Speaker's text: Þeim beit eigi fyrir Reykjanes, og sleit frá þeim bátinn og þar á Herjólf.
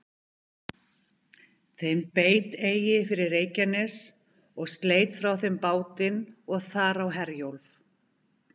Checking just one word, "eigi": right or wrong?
right